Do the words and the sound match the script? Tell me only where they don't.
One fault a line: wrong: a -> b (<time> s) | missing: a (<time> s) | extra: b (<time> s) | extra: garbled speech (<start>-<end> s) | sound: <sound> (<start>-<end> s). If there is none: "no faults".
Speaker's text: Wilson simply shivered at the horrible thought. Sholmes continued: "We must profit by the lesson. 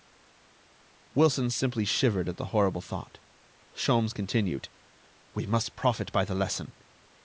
no faults